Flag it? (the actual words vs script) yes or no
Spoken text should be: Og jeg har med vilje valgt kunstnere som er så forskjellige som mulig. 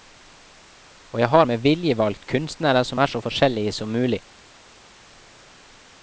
no